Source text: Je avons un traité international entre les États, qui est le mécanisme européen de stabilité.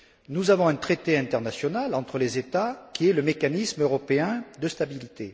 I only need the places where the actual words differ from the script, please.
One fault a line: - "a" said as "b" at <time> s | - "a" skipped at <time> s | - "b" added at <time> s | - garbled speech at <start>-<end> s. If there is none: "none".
- "Je" said as "Nous" at 0.3 s